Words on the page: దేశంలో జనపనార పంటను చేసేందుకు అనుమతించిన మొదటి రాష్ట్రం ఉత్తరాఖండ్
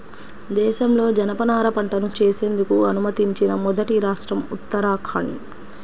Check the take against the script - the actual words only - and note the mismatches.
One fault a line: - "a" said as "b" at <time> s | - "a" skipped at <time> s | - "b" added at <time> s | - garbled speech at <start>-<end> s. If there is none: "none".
none